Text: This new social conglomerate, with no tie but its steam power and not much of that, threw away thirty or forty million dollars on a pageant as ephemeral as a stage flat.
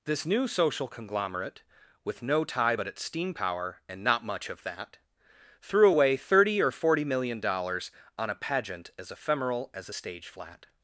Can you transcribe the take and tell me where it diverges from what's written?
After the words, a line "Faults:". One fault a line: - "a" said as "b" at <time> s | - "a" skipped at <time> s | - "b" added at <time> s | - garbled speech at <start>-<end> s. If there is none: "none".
This new social conglomerate, with no tie but its steam power and not much of that, threw away thirty or forty million dollars on a pageant as ephemeral as a stage flat.
Faults:
none